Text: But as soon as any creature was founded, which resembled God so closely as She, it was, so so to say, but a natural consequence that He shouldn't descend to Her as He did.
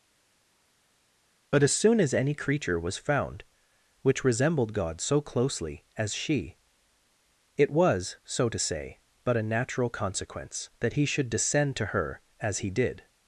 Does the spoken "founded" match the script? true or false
false